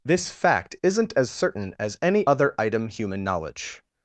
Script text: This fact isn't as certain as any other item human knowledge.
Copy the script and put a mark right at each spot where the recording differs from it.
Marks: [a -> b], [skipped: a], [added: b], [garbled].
This fact isn't as certain as any other item human knowledge.